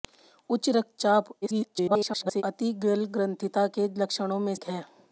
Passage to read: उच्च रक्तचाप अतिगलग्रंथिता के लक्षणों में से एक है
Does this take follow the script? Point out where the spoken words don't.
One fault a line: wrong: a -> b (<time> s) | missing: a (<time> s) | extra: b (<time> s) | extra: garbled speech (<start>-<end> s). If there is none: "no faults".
extra: garbled speech (1.4-2.4 s)
missing: से (4.5 s)